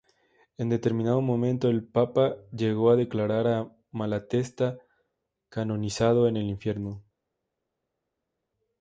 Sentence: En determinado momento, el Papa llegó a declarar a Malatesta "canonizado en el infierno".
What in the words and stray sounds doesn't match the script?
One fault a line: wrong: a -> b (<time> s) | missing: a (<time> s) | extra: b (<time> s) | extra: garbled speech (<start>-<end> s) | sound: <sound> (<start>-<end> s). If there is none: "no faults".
no faults